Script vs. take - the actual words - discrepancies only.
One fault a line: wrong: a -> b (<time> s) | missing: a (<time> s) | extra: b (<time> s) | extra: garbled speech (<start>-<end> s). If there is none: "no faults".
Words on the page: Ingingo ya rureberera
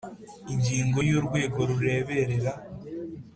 extra: urwego (1.2 s)